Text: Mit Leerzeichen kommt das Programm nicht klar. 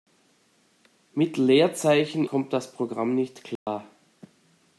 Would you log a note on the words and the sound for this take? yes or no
yes